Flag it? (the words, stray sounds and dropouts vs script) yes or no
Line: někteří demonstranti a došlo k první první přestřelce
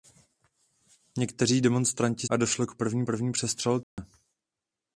yes